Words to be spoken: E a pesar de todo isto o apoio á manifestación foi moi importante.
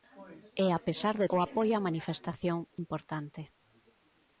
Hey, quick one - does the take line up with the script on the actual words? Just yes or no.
no